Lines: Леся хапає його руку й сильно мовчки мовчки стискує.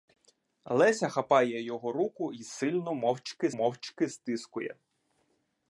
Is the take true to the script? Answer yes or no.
yes